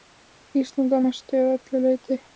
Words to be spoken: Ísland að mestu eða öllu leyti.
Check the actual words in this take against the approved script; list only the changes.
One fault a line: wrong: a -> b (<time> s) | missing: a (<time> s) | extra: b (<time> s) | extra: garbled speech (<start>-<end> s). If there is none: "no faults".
no faults